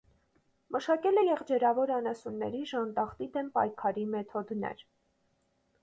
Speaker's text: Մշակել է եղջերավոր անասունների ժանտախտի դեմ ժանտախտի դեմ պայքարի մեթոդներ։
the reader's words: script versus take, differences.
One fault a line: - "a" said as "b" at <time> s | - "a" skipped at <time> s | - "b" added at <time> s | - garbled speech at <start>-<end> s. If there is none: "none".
- "ժանտախտի դեմ" skipped at 3.5 s